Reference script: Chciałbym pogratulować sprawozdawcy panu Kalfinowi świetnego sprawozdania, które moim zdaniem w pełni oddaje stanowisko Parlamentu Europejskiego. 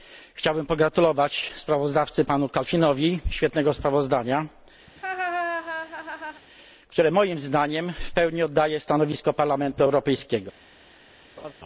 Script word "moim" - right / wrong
right